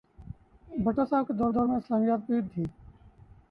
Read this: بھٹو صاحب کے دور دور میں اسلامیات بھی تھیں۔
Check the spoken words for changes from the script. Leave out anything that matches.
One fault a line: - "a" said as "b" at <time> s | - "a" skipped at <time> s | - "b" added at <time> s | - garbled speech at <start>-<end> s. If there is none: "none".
none